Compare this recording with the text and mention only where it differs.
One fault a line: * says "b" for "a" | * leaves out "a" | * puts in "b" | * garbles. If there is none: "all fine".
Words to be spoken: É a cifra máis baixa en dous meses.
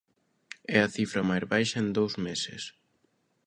all fine